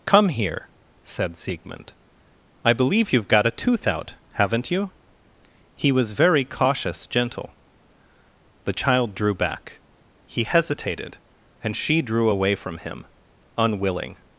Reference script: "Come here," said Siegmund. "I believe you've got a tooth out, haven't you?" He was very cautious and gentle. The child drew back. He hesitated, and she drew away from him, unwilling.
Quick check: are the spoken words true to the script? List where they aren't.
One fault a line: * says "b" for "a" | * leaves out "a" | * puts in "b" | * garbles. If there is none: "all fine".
* leaves out "and"